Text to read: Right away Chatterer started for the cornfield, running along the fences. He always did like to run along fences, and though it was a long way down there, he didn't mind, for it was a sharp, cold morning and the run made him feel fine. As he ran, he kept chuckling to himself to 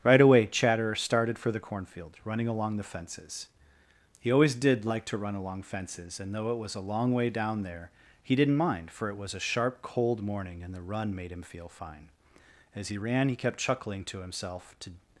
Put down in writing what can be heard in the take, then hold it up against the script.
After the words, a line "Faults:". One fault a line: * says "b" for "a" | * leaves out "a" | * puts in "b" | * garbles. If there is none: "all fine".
Right away Chatterer started for the cornfield, running along the fences. He always did like to run along fences, and though it was a long way down there, he didn't mind, for it was a sharp, cold morning and the run made him feel fine. As he ran, he kept chuckling to himself to
Faults:
all fine